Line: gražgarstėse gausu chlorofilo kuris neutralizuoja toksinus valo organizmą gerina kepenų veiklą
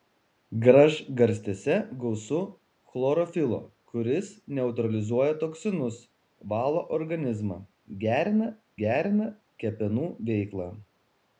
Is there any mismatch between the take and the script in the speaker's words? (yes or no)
yes